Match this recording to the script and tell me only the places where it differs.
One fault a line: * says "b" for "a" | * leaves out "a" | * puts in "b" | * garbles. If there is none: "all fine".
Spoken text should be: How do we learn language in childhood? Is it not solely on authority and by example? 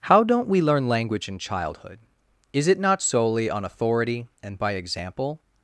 * says "don't" for "do"